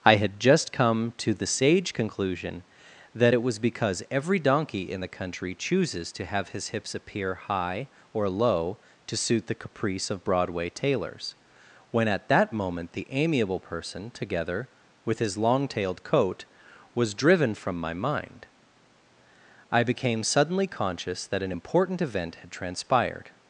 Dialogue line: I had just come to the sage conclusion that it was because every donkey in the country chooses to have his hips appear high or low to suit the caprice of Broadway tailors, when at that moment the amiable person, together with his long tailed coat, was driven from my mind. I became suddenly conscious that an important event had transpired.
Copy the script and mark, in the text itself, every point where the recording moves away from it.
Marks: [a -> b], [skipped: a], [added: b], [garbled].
I had just come to the sage conclusion that it was because every donkey in the country chooses to have his hips appear high or low to suit the caprice of Broadway tailors, when at that moment the amiable person, together with his long tailed coat, was driven from my mind. I became suddenly conscious that an important event had transpired.